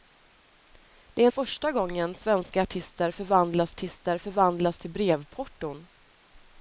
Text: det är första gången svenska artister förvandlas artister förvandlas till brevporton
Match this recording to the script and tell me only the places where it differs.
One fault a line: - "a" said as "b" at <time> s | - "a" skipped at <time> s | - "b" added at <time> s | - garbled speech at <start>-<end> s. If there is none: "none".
none